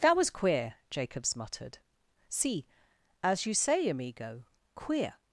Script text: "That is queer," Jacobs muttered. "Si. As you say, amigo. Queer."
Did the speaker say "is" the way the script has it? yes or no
no